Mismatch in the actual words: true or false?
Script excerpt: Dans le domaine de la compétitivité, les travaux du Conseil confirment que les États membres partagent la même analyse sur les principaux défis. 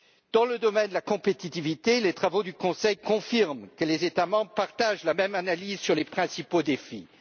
false